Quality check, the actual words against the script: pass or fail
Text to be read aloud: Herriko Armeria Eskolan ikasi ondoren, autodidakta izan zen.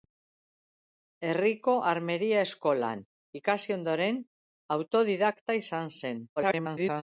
fail